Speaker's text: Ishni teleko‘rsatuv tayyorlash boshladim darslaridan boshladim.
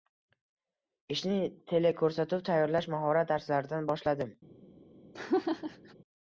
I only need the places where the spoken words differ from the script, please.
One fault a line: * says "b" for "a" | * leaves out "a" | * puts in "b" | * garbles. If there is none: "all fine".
* says "mahorat" for "boshladim"